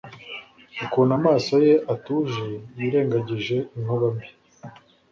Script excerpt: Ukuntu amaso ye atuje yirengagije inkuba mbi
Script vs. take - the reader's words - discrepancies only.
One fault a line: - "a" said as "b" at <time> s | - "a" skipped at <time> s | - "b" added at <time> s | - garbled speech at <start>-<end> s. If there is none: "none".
none